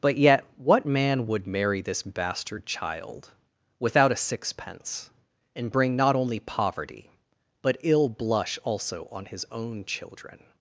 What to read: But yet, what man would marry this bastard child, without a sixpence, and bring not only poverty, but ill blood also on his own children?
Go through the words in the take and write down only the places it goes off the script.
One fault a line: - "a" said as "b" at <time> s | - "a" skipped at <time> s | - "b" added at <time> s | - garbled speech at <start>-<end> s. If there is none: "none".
- "blood" said as "blush" at 8.1 s